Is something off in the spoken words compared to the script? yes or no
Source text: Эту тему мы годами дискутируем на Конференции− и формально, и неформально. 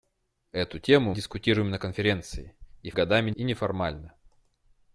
yes